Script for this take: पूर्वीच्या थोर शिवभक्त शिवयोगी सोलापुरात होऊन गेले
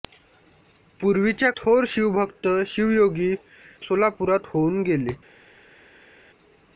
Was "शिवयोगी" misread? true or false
false